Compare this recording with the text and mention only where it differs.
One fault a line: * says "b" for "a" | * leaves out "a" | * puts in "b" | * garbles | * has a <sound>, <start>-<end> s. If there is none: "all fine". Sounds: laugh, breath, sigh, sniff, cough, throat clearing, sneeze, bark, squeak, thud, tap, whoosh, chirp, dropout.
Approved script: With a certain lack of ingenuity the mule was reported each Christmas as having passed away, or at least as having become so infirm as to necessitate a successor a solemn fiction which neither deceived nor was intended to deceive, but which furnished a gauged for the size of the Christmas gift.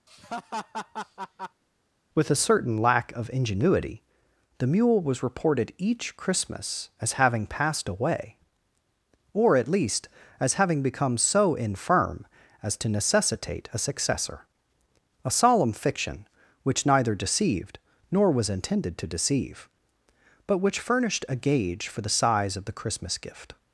* has a laugh, 0.1-1.6 s
* says "gauge" for "gauged"